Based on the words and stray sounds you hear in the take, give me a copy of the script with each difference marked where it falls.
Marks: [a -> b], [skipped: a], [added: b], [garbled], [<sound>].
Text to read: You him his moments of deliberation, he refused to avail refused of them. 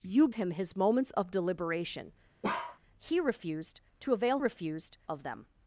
You him his moments of deliberation, [bark] he refused to avail refused of them.